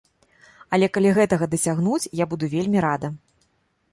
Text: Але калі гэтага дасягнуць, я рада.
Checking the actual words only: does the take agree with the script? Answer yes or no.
no